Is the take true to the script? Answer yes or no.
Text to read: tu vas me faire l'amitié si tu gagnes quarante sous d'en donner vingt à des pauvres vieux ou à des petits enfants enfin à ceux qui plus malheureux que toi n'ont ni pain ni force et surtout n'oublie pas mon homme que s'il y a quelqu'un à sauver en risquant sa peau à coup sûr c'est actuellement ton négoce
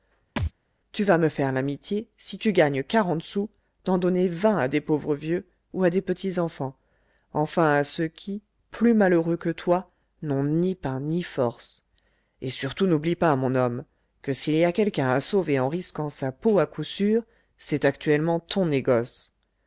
yes